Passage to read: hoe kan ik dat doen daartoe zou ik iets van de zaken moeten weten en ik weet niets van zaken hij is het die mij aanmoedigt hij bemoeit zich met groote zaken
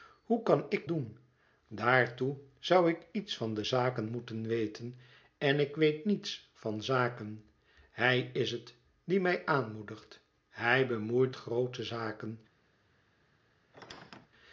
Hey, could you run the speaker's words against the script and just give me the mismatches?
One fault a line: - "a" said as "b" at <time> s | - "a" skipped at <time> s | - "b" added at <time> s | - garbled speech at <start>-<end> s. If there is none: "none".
- "dat" skipped at 0.9 s
- "zich met" skipped at 11.4 s